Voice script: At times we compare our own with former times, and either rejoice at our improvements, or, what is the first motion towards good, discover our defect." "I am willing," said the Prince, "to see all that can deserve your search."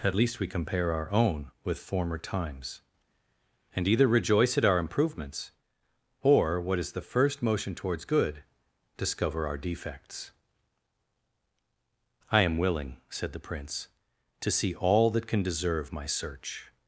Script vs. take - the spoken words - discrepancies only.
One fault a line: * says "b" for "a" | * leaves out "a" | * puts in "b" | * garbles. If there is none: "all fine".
* says "least" for "times"
* says "defects" for "defect"
* says "my" for "your"